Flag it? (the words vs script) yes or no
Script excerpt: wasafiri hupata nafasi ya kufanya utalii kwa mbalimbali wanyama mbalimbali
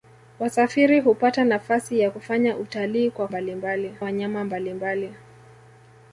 no